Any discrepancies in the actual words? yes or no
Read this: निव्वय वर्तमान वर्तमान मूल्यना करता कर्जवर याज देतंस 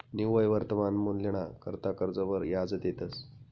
yes